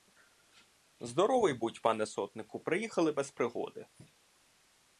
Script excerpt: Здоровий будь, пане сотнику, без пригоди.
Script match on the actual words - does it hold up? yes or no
no